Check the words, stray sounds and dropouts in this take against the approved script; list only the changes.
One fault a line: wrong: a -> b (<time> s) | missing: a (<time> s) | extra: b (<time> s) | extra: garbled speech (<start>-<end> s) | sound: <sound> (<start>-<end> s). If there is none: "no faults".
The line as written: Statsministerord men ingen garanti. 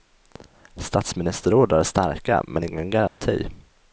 extra: är starka (1.7 s)
sound: dropout (3.1-3.2 s)